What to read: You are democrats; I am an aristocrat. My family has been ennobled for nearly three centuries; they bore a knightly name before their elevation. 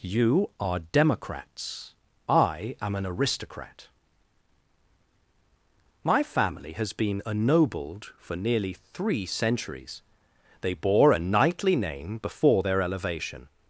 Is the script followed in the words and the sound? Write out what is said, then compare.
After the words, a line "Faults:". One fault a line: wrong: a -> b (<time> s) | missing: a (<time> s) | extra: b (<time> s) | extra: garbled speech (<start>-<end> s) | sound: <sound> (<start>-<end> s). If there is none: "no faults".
You are democrats; I am an aristocrat. My family has been ennobled for nearly three centuries; they bore a knightly name before their elevation.
Faults:
no faults